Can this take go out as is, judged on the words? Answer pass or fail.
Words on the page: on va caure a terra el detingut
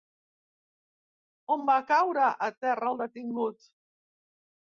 pass